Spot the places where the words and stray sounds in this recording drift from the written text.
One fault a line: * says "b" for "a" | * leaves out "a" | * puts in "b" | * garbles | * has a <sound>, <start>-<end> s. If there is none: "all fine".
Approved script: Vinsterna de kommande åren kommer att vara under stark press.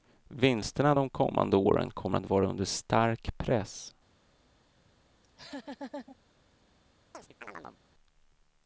* has a laugh, 5.2-6.2 s
* has a chirp, 7.1-7.8 s